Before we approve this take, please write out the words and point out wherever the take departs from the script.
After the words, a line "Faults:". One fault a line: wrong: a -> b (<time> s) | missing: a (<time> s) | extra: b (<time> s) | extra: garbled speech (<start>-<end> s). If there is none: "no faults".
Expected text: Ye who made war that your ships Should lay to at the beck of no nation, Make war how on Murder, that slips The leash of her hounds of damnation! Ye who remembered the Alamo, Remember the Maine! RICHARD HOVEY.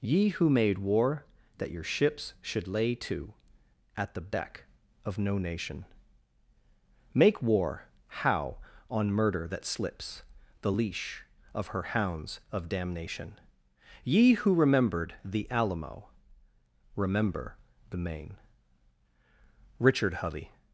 Ye who made war that your ships Should lay to at the beck of no nation, Make war how on Murder, that slips The leash of her hounds of damnation! Ye who remembered the Alamo, Remember the Maine! RICHARD HOVEY.
Faults:
no faults